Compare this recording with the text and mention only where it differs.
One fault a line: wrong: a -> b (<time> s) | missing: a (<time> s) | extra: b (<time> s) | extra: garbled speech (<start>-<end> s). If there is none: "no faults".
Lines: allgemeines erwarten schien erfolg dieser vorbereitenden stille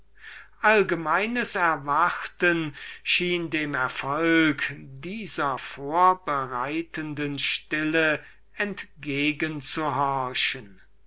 extra: dem (3.5 s)